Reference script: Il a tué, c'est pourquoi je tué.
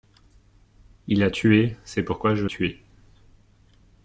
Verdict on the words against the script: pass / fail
pass